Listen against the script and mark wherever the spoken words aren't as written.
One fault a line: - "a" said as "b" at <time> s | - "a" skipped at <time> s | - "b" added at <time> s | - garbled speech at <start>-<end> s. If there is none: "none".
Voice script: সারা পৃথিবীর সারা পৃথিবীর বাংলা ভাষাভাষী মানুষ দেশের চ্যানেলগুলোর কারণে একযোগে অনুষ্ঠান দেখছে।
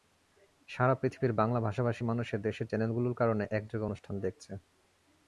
- "সারা পৃথিবীর" skipped at 1.3 s